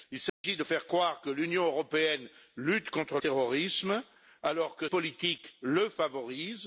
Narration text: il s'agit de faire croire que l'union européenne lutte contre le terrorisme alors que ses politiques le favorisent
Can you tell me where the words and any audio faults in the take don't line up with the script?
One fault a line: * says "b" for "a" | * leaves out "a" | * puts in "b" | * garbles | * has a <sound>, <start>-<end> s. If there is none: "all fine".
* has a dropout, 0.3-0.4 s
* leaves out "le"
* leaves out "ses"